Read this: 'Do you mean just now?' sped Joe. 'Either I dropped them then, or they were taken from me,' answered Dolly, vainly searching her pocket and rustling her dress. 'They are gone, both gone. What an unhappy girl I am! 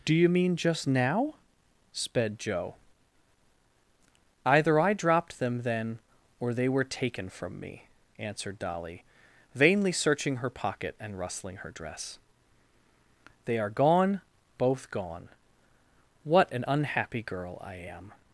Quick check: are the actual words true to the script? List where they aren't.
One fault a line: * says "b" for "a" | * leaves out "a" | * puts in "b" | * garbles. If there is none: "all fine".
all fine